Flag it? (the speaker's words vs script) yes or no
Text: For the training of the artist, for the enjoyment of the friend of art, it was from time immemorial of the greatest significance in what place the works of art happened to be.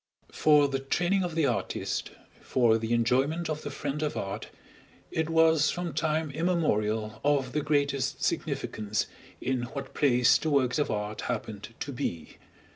no